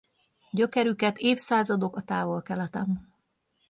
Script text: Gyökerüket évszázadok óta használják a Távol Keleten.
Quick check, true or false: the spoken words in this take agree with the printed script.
false